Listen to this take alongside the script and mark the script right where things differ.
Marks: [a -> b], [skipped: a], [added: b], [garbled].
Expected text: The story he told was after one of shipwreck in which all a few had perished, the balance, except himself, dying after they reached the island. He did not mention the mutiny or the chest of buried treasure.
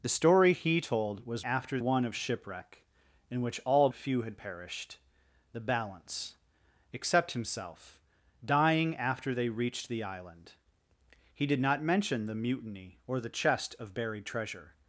The story he told was after one of shipwreck in which all a few had perished, the balance, except himself, dying after they reached the island. He did not mention the mutiny or the chest of buried treasure.